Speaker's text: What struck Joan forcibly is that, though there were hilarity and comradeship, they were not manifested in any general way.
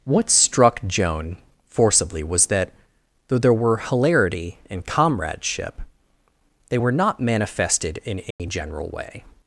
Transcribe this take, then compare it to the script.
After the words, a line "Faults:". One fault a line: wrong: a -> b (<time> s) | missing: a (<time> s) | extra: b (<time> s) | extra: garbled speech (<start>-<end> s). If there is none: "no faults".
What struck Joan forcibly was that, though there were hilarity and comradeship, they were not manifested in any general way.
Faults:
wrong: is -> was (2.2 s)